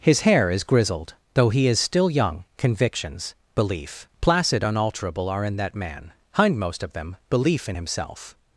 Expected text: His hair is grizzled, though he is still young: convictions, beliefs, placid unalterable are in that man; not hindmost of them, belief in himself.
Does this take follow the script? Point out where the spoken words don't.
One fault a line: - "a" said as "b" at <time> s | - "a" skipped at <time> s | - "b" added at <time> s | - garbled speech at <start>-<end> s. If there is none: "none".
- "beliefs" said as "belief" at 3.5 s
- "not" skipped at 6.1 s